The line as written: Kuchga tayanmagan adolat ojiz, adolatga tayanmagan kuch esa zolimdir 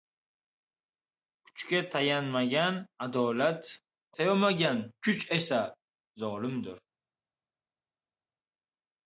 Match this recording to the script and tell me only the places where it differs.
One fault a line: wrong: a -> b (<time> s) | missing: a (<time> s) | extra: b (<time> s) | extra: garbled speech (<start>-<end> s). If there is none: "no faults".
missing: ojiz adolatga (3.7 s)